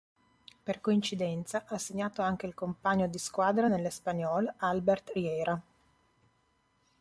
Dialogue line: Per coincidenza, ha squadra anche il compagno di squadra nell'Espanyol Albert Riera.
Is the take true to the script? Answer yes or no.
no